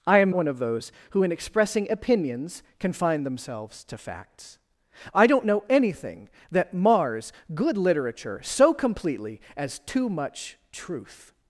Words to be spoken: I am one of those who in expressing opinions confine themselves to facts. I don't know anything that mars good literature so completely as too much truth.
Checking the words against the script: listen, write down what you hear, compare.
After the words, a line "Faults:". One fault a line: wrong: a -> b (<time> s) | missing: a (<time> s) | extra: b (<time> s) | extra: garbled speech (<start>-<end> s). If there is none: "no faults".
I am one of those who in expressing opinions confine themselves to facts. I don't know anything that mars good literature so completely as too much truth.
Faults:
no faults